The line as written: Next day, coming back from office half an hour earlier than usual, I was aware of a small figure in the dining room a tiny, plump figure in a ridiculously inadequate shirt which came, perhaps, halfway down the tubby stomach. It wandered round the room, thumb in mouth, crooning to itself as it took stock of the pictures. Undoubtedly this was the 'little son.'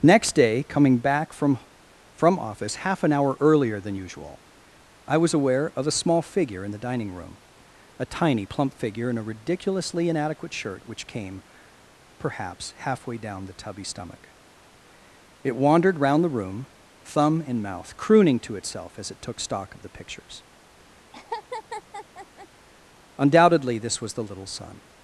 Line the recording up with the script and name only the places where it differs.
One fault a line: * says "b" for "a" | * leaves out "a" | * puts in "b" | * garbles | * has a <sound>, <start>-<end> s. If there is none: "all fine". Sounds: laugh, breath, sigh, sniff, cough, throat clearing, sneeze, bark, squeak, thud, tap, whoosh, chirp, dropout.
* puts in "from"
* has a laugh, 21.1-22.5 s